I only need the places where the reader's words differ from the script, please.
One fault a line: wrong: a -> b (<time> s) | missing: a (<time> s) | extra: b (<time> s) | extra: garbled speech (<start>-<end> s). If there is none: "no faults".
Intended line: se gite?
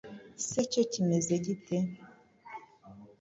extra: cyo kimeze (0.7 s)